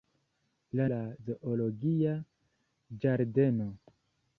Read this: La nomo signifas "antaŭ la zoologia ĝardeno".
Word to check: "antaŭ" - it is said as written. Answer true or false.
false